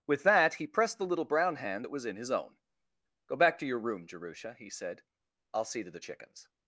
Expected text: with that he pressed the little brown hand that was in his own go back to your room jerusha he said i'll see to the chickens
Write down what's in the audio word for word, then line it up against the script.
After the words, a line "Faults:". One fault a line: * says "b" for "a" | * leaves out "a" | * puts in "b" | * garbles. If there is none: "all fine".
with that he pressed the little brown hand that was in his own go back to your room jerusha he said i'll see to the chickens
Faults:
all fine